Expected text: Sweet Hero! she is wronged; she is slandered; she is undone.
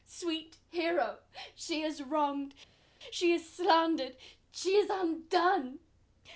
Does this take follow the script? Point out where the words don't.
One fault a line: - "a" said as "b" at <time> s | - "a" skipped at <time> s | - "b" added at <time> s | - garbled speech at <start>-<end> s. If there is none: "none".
none